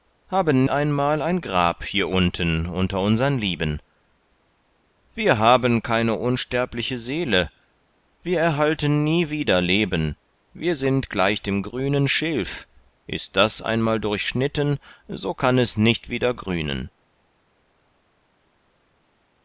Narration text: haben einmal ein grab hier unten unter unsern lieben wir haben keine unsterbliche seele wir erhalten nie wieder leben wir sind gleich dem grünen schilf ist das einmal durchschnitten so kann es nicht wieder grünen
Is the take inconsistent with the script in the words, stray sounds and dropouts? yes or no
no